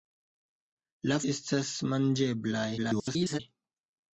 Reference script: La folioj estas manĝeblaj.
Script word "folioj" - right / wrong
wrong